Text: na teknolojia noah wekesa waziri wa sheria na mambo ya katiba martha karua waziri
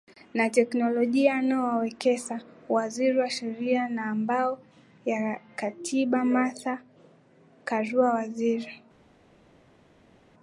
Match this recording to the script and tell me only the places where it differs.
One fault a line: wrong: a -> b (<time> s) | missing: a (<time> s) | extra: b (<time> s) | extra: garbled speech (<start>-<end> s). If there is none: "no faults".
no faults